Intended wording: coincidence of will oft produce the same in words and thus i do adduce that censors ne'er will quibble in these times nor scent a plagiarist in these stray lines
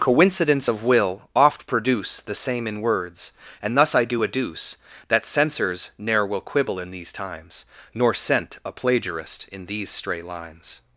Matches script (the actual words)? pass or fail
pass